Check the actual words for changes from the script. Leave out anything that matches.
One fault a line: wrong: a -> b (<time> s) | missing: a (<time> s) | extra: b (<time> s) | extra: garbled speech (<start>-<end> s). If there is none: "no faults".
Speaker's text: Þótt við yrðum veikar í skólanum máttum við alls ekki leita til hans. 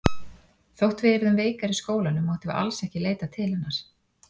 wrong: hans -> hennar (3.5 s)